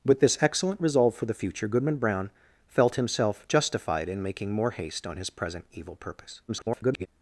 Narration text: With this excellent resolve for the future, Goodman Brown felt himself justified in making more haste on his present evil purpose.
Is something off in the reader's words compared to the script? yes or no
yes